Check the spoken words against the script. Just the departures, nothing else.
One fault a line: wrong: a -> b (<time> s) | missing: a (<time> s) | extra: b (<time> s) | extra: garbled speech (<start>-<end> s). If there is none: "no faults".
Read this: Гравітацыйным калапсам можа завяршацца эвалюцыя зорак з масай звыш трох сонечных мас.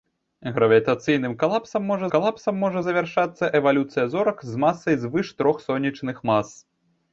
extra: калапсам можа (2.1 s)